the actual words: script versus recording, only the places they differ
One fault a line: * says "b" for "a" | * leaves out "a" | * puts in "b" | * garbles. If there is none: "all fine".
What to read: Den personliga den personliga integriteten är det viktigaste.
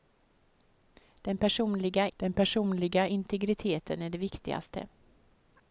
all fine